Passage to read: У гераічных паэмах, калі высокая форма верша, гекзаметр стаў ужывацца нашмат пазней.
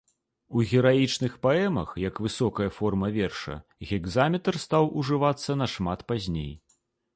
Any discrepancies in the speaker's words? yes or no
yes